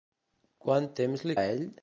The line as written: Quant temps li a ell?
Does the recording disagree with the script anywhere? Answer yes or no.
no